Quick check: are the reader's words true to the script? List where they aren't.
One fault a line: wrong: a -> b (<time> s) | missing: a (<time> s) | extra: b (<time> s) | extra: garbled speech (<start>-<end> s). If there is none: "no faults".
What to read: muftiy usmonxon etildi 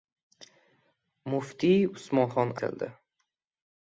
no faults